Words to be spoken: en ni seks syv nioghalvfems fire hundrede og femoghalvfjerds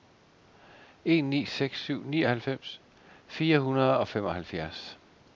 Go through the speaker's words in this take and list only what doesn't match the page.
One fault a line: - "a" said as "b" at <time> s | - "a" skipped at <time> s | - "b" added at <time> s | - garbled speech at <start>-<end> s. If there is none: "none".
none